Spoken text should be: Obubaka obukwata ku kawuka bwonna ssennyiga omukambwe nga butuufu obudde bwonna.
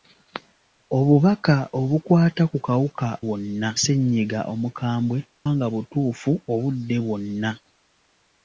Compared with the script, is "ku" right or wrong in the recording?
right